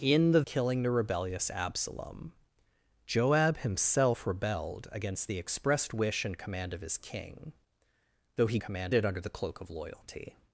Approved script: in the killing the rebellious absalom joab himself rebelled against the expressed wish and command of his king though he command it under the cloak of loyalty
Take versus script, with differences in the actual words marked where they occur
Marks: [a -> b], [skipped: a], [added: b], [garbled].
in the killing the rebellious absalom joab himself rebelled against the expressed wish and command of his king though he command it under the cloak of loyalty